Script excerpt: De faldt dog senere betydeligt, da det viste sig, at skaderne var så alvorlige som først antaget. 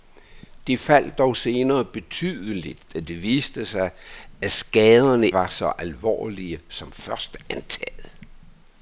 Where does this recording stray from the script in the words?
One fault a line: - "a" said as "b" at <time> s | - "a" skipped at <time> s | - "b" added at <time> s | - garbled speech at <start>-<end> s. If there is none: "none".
none